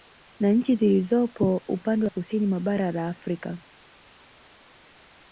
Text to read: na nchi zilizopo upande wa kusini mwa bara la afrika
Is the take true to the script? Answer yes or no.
yes